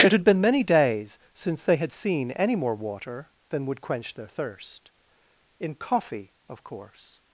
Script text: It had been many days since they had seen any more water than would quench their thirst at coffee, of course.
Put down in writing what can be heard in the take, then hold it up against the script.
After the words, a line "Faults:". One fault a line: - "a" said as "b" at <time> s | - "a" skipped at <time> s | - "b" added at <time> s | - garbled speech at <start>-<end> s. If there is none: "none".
It had been many days since they had seen any more water than would quench their thirst in coffee, of course.
Faults:
- "at" said as "in" at 5.6 s